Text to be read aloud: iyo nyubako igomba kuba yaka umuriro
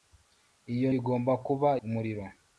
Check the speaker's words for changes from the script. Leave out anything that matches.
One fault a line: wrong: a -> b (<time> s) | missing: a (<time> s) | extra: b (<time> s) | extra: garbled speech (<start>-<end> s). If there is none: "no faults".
missing: nyubako (0.9 s)
missing: yaka (1.7 s)